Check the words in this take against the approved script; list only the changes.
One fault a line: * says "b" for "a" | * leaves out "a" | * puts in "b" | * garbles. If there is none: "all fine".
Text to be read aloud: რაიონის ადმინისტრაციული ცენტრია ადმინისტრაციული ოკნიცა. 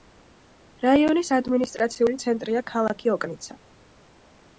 * says "ქალაქი" for "ადმინისტრაციული"